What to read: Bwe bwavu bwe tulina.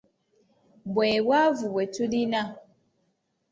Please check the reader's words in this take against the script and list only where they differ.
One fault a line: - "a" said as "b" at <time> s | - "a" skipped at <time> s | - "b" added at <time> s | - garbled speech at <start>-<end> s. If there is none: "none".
none